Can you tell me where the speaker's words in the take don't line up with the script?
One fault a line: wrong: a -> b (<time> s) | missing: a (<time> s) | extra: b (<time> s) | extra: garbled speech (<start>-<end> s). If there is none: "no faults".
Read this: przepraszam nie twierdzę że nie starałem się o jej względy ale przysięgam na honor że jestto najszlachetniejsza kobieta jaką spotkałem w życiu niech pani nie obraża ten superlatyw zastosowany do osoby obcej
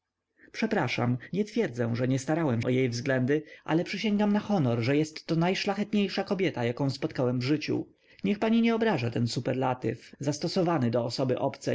missing: się (2.6 s)